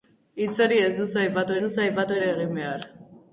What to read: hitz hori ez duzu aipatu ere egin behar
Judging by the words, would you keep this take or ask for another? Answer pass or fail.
fail